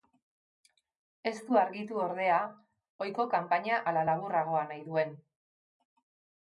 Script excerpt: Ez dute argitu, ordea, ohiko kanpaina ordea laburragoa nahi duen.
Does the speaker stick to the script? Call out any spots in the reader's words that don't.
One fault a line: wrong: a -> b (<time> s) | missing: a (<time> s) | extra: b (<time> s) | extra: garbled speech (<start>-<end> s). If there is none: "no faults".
wrong: dute -> du (1.5 s)
wrong: ordea -> ala (3.9 s)